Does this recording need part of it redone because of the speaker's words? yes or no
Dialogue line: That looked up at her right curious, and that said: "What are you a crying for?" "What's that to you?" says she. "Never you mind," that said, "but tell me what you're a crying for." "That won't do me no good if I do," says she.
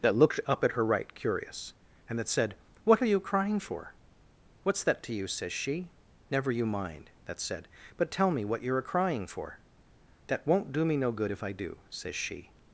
yes